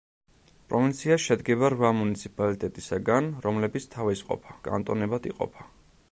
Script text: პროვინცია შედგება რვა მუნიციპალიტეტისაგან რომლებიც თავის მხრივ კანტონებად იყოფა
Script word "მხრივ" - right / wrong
wrong